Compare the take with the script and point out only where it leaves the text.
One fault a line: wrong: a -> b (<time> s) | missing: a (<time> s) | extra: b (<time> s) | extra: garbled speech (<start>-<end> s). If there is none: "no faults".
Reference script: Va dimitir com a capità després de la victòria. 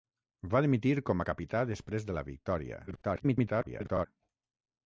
extra: garbled speech (2.9-4.1 s)